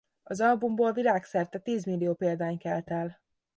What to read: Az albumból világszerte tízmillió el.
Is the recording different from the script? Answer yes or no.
yes